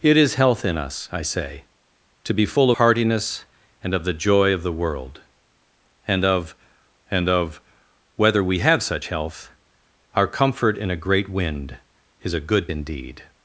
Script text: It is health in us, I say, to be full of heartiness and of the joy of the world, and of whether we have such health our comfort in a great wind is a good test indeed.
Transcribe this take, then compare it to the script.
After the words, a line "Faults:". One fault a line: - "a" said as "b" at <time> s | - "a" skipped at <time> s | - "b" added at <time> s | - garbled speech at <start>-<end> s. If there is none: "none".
It is health in us, I say, to be full heartiness and of the joy of the world, and of and of whether we have such health our comfort in a great wind is a good indeed.
Faults:
- "of" skipped at 2.7 s
- "and of" added at 7.1 s
- "test" skipped at 12.7 s